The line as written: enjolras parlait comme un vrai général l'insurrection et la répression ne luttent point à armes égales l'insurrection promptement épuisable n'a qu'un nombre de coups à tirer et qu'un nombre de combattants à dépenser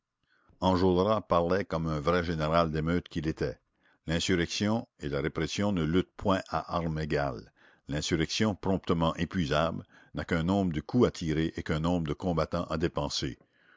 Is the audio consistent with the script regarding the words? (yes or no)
no